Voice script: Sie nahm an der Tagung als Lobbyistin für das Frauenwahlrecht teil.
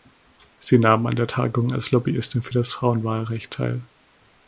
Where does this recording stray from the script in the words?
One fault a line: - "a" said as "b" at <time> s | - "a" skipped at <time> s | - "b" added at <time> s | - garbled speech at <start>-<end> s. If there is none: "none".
none